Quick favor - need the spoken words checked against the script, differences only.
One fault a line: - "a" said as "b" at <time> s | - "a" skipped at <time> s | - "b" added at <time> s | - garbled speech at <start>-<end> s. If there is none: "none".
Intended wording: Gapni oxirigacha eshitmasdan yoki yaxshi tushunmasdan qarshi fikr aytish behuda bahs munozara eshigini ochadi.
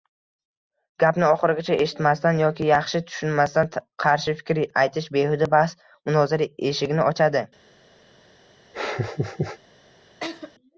none